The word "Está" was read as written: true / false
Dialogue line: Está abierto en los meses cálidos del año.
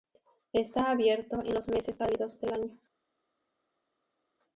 true